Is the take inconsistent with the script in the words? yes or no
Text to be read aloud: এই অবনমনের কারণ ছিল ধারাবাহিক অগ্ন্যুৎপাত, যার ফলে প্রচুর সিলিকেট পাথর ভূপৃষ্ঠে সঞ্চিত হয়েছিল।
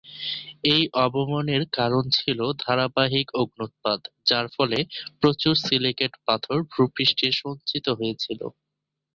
no